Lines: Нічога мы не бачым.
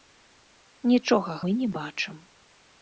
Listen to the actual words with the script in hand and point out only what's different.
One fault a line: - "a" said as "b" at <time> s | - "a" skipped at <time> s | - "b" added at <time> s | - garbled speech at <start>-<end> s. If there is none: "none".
none